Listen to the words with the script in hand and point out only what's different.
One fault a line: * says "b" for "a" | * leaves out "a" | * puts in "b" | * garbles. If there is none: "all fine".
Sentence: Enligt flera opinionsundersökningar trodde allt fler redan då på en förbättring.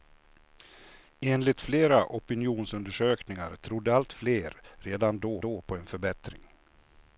* puts in "då"